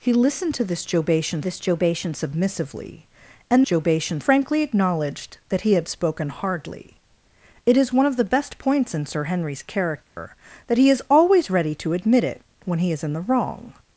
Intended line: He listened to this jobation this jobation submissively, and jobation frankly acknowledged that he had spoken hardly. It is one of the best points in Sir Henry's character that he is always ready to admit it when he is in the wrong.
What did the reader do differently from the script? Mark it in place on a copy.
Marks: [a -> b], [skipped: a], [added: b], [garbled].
He listened to this jobation this jobation submissively, and jobation frankly acknowledged that he had spoken hardly. It is one of the best points in Sir Henry's character that he is always ready to admit it when he is in the wrong.